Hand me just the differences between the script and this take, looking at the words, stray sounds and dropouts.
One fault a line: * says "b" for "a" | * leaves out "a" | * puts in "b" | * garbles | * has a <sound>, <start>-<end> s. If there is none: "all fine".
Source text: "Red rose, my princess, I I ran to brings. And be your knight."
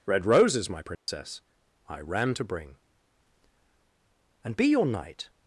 * says "roses" for "rose"
* has a dropout, 0.9-1.1 s
* leaves out "I"
* says "bring" for "brings"